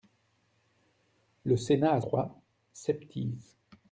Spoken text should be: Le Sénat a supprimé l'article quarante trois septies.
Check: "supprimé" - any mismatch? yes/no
yes